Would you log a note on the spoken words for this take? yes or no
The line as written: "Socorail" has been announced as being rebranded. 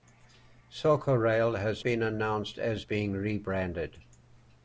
no